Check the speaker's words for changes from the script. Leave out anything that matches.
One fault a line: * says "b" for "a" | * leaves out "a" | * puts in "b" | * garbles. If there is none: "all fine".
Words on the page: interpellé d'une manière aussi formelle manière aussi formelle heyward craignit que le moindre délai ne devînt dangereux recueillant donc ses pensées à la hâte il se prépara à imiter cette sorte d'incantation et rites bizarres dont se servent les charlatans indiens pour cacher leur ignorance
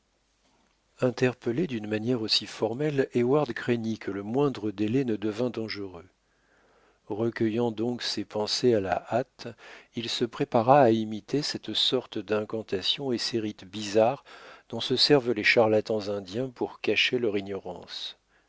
* leaves out "manière aussi formelle"
* puts in "ces"